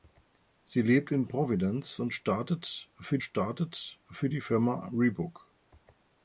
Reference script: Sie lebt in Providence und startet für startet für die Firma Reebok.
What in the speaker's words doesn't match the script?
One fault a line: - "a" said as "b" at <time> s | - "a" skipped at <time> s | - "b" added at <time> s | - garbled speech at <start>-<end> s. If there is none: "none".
none